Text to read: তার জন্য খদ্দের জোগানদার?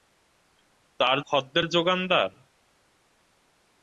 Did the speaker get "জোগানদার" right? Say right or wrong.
right